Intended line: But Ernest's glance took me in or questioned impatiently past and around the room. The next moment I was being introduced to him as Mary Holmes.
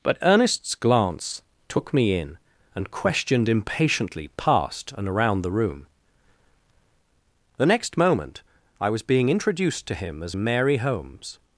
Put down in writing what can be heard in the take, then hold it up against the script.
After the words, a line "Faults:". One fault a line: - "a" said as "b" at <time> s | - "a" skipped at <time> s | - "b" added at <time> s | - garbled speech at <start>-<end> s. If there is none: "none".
But Ernest's glance took me in and questioned impatiently past and around the room. The next moment I was being introduced to him as Mary Holmes.
Faults:
- "or" said as "and" at 2.8 s